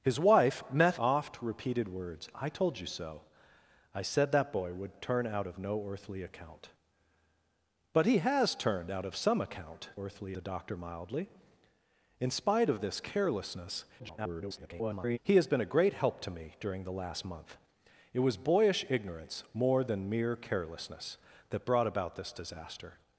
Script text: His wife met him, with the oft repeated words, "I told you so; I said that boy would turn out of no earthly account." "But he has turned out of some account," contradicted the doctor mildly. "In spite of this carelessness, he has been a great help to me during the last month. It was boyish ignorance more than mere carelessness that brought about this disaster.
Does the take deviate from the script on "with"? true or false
true